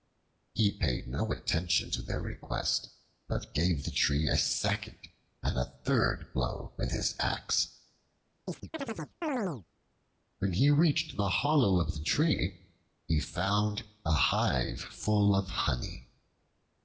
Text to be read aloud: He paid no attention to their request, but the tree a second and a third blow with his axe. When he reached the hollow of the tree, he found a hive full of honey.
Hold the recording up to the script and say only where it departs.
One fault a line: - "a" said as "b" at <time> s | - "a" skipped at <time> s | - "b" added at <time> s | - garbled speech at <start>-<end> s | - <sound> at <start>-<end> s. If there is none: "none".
- "gave" added at 3.5 s
- chirp at 8.5-9.7 s